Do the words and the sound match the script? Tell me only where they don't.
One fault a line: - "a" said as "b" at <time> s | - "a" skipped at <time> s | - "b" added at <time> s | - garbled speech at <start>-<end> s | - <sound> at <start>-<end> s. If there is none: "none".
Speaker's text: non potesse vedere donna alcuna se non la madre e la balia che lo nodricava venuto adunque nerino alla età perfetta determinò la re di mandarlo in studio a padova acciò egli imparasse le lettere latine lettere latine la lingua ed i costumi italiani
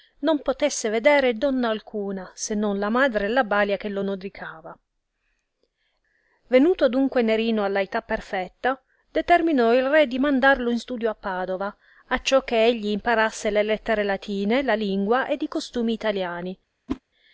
- "la" said as "il" at 9.7 s
- "che" added at 12.4 s
- "lettere latine" skipped at 14.6 s
- whoosh at 16.9-17.0 s